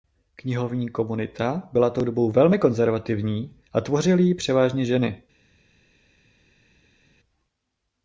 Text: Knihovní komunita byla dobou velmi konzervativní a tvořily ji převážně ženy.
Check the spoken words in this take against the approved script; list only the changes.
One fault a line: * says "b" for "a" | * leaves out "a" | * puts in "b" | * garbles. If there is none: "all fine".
* puts in "tou"